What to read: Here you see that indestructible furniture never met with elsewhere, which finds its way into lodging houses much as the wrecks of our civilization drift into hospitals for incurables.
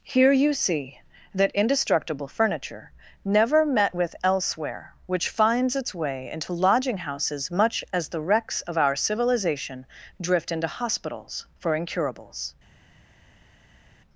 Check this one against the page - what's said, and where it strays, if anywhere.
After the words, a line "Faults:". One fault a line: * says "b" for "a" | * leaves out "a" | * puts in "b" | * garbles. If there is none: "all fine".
Here you see that indestructible furniture never met with elsewhere, which finds its way into lodging houses much as the wrecks of our civilization drift into hospitals for incurables.
Faults:
all fine